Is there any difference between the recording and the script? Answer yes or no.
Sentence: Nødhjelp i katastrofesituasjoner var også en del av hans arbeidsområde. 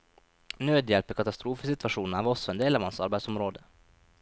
no